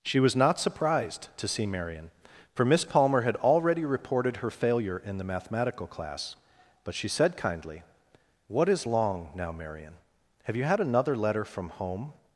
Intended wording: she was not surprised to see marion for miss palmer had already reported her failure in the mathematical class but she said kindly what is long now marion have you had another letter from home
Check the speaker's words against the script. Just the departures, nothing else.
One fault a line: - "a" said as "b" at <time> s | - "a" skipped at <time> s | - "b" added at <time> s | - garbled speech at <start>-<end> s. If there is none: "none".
none